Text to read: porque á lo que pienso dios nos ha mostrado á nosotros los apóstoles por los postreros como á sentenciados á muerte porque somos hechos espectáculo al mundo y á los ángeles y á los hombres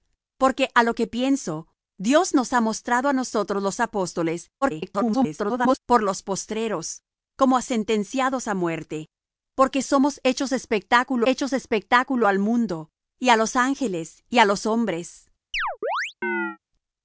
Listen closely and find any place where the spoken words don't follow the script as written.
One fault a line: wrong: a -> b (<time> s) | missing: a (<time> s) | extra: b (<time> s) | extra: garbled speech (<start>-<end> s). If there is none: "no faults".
extra: garbled speech (4.6-5.8 s)
extra: hechos espectáculo (11.2 s)